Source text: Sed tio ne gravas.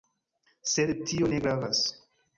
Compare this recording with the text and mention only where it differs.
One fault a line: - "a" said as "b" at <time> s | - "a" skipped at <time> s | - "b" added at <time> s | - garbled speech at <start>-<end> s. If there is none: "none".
none